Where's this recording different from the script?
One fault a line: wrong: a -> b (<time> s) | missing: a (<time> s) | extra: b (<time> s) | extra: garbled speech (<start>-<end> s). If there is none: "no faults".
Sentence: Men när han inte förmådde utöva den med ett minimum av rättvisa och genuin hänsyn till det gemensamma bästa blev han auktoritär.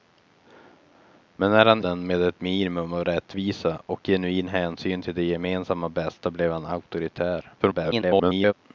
missing: inte förmådde utöva (1.8 s)
extra: garbled speech (7.6-8.5 s)